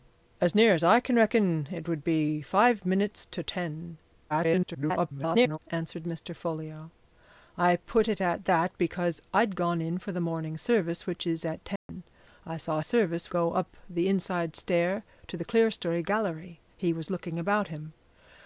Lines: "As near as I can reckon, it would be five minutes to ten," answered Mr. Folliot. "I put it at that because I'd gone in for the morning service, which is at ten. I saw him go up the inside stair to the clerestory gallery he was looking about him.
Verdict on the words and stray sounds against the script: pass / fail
fail